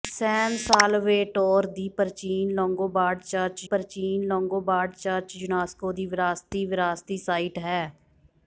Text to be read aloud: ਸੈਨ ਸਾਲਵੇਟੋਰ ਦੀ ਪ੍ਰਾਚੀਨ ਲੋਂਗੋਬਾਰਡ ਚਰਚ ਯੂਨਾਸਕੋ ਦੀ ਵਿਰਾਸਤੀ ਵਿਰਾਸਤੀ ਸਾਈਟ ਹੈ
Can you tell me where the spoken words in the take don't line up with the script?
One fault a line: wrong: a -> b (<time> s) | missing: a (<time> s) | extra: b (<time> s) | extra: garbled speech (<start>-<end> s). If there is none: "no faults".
extra: ਪ੍ਰਾਚੀਨ ਲੋਂਗੋਬਾਰਡ ਚਰਚ (3.6 s)